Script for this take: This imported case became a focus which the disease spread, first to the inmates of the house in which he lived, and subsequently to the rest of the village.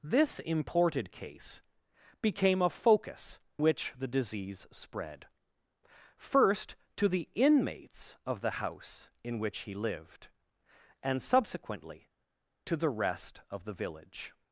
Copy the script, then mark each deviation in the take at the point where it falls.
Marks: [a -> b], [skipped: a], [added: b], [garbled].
This imported case became a focus which the disease spread, first to the inmates of the house in which he lived, and subsequently to the rest of the village.